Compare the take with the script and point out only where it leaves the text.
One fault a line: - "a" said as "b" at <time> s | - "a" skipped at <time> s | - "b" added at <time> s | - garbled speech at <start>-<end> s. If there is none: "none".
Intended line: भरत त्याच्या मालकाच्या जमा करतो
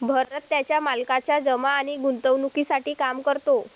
- "आणि गुंतवणूकीसाठी काम" added at 1.7 s